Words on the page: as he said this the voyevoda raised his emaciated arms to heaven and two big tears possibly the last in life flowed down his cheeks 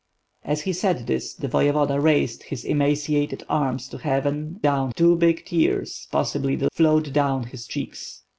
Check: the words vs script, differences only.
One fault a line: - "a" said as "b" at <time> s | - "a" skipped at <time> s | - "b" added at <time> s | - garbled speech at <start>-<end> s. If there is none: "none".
- "and" said as "down" at 4.6 s
- "last in life" skipped at 6.7 s